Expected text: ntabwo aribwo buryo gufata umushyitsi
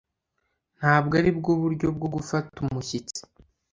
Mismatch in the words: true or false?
true